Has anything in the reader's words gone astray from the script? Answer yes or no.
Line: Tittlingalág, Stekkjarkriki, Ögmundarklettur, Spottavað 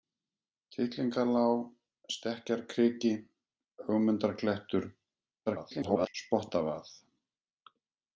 yes